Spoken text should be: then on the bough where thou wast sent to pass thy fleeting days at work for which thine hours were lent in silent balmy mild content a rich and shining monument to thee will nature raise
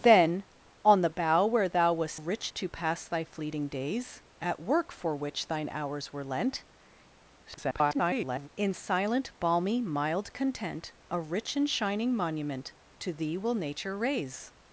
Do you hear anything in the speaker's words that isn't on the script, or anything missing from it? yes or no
yes